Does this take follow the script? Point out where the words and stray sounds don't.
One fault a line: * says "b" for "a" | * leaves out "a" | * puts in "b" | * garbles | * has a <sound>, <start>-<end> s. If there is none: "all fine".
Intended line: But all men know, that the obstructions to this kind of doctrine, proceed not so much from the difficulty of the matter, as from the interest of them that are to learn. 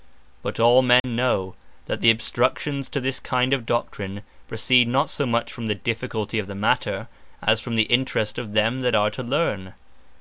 * has a dropout, 1.0-1.0 s